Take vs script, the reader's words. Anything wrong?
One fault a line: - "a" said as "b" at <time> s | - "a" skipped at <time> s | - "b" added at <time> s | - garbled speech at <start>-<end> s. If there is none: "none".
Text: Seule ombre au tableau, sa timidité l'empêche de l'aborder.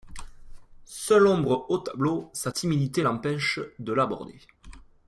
none